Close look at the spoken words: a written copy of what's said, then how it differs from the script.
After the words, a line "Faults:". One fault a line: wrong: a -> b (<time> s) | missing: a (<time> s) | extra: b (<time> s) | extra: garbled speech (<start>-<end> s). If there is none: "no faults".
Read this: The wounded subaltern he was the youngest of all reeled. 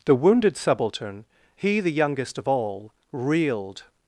The wounded subaltern he the youngest of all reeled.
Faults:
missing: was (1.8 s)